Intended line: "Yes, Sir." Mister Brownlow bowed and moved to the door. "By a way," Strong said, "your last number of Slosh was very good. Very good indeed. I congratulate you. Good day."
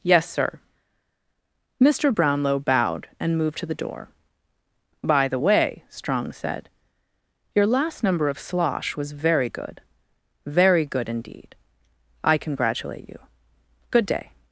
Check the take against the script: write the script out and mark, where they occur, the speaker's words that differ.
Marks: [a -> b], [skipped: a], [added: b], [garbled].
"Yes, Sir." Mister Brownlow bowed and moved to the door. "By [a -> the] way," Strong said, "your last number of Slosh was very good. Very good indeed. I congratulate you. Good day."